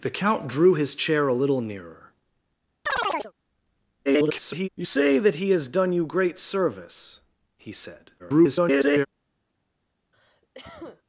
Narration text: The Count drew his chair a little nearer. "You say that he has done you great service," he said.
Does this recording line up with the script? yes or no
no